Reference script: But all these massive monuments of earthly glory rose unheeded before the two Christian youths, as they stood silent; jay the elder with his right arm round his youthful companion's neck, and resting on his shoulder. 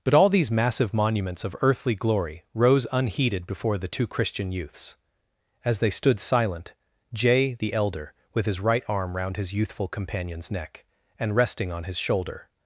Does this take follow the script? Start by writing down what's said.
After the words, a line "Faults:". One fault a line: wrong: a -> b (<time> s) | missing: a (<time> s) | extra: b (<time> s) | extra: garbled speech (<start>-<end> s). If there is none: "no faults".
But all these massive monuments of earthly glory rose unheeded before the two Christian youths, as they stood silent; jay the elder with his right arm round his youthful companion's neck, and resting on his shoulder.
Faults:
no faults